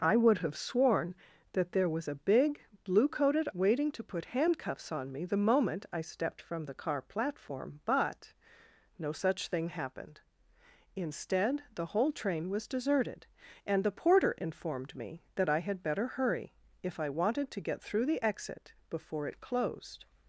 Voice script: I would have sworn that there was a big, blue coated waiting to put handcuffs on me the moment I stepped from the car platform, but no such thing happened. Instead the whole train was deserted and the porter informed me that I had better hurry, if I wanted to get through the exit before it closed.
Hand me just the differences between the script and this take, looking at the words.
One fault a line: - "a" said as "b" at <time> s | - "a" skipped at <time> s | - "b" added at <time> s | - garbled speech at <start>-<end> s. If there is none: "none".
none